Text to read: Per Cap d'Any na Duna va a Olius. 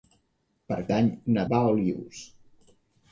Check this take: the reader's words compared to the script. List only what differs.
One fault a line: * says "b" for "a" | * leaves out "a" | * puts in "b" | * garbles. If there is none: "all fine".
* leaves out "Cap"
* leaves out "Duna"